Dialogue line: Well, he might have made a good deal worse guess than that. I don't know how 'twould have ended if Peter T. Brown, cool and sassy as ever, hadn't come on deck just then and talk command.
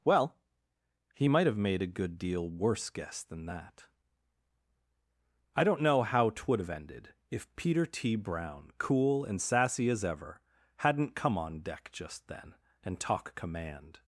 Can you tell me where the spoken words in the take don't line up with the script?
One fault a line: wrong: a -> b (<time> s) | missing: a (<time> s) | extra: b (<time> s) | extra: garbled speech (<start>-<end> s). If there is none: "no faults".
no faults